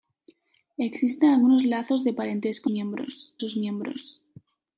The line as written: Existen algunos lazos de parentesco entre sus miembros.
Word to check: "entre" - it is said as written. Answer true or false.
false